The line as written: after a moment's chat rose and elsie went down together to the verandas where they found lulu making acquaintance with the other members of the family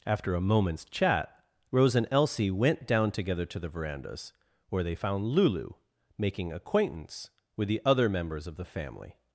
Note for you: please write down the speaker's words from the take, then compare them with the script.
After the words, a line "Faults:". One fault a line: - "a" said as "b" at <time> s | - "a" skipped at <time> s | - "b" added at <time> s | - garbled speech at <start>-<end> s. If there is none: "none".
after a moment's chat rose and elsie went down together to the verandas where they found lulu making acquaintance with the other members of the family
Faults:
none